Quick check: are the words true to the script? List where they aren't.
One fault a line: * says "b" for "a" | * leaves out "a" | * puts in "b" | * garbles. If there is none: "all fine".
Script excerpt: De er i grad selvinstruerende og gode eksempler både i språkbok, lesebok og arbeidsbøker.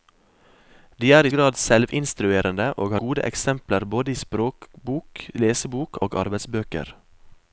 all fine